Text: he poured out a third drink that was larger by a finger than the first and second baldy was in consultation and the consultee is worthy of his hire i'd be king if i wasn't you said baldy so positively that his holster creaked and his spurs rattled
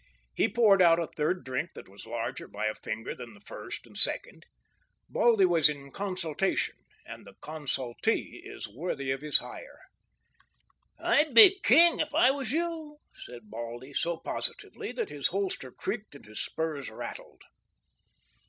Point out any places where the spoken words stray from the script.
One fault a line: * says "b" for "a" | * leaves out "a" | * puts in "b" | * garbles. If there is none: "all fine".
* says "was" for "wasn't"